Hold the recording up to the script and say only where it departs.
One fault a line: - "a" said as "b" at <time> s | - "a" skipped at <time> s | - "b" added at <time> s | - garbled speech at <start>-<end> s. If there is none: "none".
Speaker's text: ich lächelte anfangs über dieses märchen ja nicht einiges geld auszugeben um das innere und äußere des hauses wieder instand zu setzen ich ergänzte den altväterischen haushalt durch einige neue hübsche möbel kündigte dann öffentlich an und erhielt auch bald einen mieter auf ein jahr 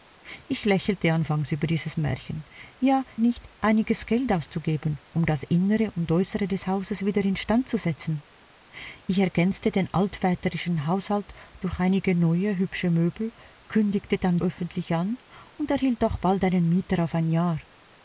none